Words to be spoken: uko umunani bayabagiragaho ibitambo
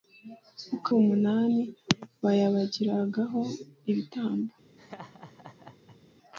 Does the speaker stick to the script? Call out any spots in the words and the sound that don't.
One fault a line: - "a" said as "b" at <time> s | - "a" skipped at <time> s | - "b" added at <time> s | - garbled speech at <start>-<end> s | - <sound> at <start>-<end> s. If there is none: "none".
- laugh at 4.8-6.0 s